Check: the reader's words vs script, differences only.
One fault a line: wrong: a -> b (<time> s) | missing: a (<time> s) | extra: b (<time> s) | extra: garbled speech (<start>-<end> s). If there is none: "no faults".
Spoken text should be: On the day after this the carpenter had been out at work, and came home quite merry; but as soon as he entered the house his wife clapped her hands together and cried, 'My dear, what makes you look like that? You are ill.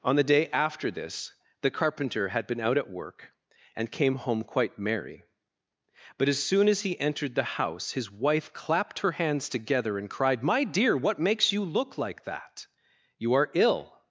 no faults